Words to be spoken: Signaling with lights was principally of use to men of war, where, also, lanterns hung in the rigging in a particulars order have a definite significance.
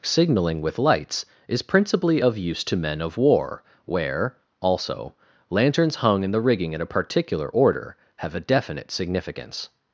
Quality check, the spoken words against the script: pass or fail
fail